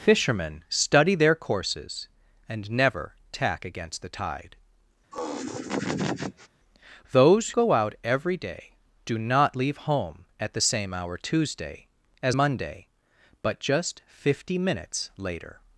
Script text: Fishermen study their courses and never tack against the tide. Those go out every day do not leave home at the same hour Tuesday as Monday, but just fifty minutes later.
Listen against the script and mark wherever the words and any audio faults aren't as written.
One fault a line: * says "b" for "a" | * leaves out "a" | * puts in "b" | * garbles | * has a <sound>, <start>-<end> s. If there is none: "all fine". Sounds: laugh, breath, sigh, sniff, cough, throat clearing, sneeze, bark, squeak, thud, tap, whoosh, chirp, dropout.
* has a laugh, 5.1-6.5 s